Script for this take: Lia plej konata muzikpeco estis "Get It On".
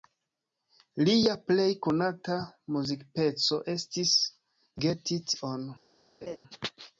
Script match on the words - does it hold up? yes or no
yes